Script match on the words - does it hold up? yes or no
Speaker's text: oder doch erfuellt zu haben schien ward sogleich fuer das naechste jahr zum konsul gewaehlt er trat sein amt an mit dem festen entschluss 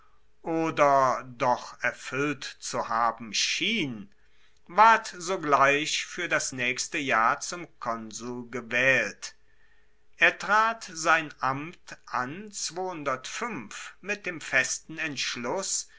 yes